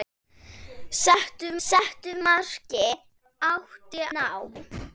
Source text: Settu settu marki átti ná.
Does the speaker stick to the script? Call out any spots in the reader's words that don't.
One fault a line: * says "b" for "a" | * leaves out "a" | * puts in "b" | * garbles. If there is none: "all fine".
all fine